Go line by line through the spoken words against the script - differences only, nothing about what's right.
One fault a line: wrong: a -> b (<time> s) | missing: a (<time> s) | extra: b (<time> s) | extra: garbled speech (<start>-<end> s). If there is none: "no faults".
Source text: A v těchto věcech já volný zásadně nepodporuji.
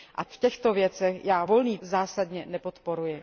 no faults